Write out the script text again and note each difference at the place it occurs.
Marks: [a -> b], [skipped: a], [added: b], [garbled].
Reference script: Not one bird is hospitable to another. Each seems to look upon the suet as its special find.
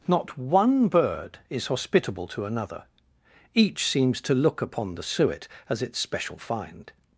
Not one bird is hospitable to another. Each seems to look upon the suet as its special find.